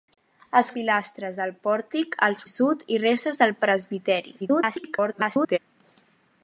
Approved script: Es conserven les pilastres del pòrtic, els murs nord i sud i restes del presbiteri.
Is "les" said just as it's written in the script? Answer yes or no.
no